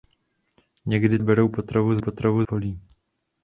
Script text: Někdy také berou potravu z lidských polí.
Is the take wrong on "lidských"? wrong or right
wrong